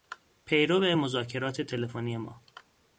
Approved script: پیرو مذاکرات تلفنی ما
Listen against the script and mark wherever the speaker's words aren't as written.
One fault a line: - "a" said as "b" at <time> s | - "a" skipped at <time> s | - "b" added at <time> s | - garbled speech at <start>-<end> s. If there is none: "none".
none